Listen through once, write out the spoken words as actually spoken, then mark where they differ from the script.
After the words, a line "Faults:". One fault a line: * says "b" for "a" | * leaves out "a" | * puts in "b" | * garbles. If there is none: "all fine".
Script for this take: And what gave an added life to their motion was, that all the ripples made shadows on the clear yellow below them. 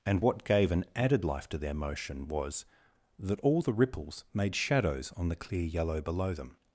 And what gave an added life to their motion was, that all the ripples made shadows on the clear yellow below them.
Faults:
all fine